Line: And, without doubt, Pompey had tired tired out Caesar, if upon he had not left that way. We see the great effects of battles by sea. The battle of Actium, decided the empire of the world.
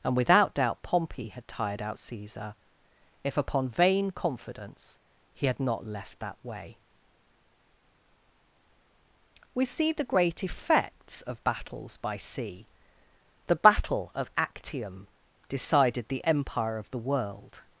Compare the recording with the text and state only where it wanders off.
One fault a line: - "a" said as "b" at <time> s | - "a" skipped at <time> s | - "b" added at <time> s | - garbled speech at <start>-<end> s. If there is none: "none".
- "tired" skipped at 1.8 s
- "vain confidence" added at 3.7 s